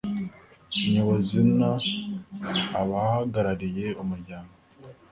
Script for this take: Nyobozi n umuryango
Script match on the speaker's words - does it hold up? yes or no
no